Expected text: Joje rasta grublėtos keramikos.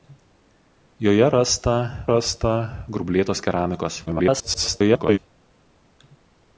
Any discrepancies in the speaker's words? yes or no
yes